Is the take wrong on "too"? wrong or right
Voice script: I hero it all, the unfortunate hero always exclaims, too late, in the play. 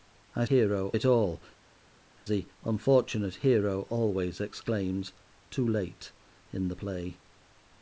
right